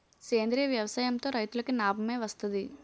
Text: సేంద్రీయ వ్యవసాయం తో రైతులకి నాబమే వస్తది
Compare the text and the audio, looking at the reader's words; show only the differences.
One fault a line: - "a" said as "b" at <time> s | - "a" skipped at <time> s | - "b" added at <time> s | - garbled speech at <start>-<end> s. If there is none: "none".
none